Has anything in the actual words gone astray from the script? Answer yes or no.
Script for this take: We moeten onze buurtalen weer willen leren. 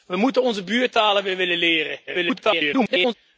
yes